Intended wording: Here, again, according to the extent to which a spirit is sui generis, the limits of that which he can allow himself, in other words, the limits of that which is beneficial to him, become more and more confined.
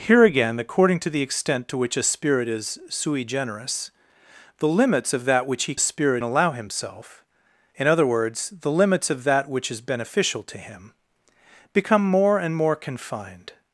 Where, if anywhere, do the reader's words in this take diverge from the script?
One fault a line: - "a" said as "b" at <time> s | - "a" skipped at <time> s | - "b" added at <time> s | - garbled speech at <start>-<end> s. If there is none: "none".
- "can" said as "spirit" at 5.8 s